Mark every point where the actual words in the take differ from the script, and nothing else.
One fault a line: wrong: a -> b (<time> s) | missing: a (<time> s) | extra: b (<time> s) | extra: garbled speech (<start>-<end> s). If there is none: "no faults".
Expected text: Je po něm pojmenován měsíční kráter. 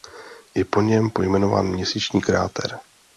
no faults